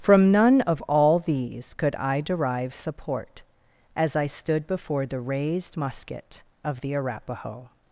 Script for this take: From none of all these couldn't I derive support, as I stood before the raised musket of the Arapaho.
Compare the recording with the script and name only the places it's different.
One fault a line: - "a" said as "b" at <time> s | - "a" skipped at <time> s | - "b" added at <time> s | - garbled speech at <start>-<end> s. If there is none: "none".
- "couldn't" said as "could" at 1.8 s